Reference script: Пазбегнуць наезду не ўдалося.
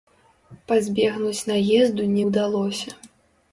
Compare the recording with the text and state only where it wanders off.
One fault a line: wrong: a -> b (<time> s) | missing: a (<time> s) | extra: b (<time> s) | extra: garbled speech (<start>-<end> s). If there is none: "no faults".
no faults